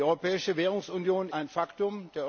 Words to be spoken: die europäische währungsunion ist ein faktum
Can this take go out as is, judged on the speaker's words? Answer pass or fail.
fail